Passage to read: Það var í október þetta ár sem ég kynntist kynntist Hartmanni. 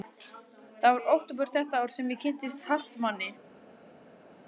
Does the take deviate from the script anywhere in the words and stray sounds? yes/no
yes